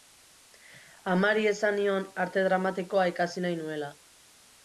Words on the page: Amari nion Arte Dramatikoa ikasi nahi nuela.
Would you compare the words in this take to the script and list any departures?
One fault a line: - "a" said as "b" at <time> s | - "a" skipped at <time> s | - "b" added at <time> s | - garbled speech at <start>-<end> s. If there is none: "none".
- "esan" added at 1.5 s